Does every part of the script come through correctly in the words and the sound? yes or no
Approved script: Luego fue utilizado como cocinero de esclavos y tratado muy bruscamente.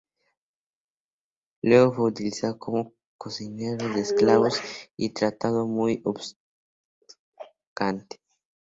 yes